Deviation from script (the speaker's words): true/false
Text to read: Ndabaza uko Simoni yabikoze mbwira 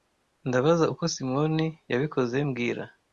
false